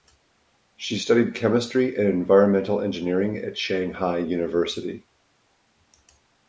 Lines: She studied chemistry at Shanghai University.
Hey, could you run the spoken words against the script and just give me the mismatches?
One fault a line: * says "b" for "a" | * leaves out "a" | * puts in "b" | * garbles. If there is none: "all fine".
* puts in "and environmental engineering"